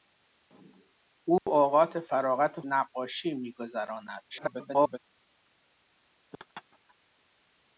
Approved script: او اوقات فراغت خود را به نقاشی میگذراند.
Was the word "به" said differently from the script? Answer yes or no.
yes